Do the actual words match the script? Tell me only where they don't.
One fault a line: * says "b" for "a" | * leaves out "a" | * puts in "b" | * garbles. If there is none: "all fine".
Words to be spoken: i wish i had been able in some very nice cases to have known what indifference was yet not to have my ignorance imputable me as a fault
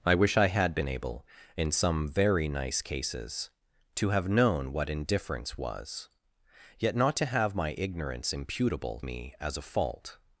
all fine